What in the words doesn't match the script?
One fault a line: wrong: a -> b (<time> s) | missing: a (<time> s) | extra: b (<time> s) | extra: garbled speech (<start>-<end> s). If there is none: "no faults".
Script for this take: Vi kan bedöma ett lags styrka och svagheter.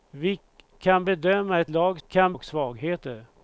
wrong: styrka -> kan (2.1 s)